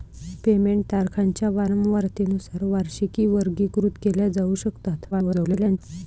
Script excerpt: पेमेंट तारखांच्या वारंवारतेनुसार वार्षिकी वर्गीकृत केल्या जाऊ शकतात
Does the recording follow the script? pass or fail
fail